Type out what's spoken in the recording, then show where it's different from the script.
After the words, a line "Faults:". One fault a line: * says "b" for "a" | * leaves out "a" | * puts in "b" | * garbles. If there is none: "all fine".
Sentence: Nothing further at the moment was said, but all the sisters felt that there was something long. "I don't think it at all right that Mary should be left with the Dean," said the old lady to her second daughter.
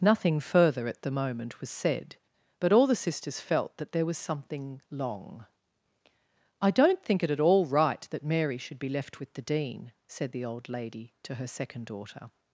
Nothing further at the moment was said, but all the sisters felt that there was something long. "I don't think it at all right that Mary should be left with the Dean," said the old lady to her second daughter.
Faults:
all fine